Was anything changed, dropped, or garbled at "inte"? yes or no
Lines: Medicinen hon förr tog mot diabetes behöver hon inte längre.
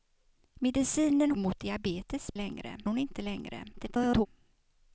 no